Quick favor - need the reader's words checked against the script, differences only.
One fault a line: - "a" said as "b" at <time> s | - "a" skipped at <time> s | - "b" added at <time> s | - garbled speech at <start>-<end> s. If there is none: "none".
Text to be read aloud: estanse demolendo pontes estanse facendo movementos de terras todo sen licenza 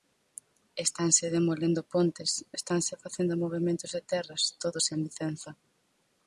none